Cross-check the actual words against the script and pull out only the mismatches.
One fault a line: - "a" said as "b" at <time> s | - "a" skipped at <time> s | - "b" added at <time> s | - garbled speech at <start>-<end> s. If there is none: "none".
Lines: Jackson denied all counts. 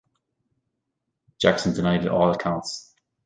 none